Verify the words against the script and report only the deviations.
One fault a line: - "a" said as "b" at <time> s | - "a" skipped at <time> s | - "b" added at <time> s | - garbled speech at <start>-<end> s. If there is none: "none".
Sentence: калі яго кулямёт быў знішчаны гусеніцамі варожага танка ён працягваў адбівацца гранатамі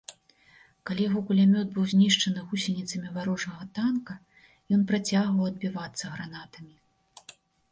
none